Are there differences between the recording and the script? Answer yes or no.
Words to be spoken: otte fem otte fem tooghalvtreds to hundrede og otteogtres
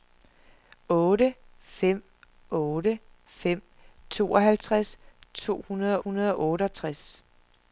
yes